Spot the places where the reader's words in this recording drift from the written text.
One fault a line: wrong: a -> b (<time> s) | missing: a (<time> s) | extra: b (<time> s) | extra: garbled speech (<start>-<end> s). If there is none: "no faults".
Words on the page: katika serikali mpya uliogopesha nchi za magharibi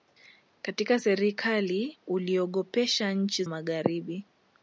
missing: mpya (2.0 s)
missing: za (3.4 s)